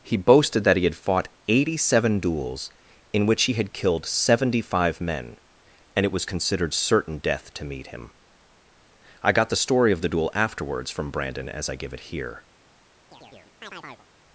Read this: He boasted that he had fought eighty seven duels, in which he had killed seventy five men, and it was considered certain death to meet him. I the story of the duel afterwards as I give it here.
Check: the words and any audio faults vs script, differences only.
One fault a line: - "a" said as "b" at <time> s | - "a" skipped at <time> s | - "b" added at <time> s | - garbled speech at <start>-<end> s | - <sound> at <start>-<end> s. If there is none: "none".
- "got" added at 9.3 s
- "from Brandon" added at 10.9 s
- chirp at 13.1-14.1 s